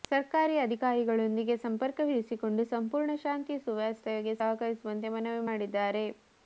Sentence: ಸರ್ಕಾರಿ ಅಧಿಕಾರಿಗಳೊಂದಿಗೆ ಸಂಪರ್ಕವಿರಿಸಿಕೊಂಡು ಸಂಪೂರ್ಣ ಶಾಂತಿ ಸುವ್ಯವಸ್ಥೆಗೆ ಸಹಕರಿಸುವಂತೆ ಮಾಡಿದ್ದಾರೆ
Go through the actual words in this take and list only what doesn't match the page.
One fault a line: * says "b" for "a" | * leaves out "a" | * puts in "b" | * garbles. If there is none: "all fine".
* puts in "ಮನವಿ"